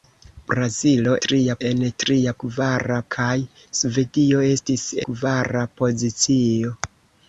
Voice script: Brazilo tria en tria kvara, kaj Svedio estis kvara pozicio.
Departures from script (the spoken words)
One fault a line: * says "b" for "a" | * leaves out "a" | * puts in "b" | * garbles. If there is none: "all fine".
all fine